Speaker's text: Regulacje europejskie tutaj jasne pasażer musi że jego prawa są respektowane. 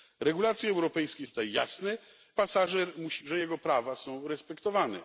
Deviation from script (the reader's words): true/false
false